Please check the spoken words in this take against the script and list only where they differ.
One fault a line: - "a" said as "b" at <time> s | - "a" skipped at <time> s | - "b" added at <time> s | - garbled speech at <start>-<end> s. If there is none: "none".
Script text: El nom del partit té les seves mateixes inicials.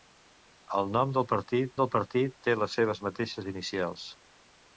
- "del partit" added at 1.8 s